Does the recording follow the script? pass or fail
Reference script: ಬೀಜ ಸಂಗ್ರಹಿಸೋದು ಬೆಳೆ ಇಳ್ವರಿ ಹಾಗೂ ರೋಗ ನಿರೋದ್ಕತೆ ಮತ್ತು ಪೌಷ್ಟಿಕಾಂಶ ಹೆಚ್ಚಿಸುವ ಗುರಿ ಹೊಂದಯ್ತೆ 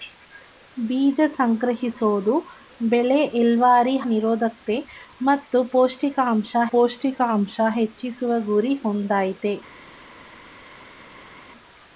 fail